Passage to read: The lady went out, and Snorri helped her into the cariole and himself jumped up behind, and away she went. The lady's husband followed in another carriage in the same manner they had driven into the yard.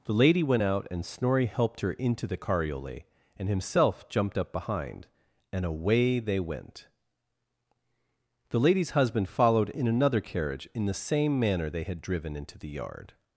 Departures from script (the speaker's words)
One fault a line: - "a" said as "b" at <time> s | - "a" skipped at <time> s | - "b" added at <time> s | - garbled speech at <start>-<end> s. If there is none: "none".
- "she" said as "they" at 6.2 s